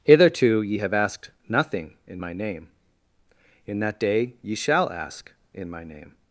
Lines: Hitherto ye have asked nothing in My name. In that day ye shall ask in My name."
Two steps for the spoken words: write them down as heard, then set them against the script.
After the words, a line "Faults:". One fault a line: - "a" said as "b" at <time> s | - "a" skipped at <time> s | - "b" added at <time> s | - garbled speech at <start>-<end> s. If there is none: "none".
Hitherto ye have asked nothing in My name. In that day ye shall ask in My name."
Faults:
none